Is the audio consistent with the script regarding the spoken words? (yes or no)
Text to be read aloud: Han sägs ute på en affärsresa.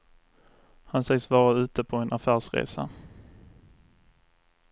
no